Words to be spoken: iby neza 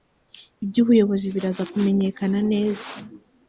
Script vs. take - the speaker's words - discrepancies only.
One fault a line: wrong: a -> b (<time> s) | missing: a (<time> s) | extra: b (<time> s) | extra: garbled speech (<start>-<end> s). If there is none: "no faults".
extra: ubuyobozi biraza kumenyekana (0.8 s)